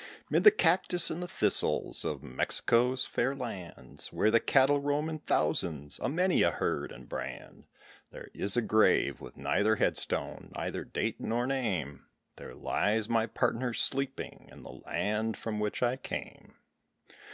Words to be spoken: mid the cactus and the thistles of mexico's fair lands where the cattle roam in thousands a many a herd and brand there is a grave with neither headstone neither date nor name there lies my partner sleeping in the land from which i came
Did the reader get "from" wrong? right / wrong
right